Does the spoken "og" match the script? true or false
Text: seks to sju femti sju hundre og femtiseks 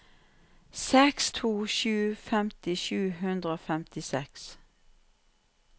true